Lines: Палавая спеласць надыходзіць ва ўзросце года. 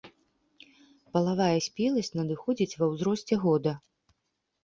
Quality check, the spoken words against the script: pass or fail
pass